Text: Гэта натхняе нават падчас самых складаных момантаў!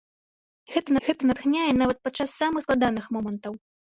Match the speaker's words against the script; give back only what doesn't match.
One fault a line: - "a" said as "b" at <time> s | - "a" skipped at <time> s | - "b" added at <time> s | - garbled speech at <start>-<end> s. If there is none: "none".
- "гэта" added at 1.1 s